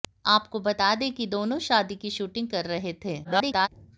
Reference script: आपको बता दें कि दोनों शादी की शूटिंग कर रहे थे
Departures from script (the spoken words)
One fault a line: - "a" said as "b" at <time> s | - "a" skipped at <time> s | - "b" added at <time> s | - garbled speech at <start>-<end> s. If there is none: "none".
- garbled speech at 3.2-3.7 s